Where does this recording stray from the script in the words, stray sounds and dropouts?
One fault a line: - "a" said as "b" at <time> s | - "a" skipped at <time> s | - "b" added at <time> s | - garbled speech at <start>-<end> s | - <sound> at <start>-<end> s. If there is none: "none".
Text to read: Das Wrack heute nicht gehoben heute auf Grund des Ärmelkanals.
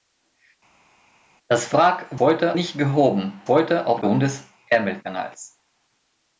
none